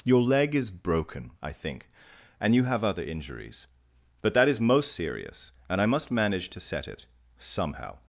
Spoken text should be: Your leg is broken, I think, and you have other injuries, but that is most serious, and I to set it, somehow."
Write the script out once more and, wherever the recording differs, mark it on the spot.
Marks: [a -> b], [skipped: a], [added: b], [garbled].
Your leg is broken, I think, and you have other injuries, but that is most serious, and I [added: must manage] to set it, somehow."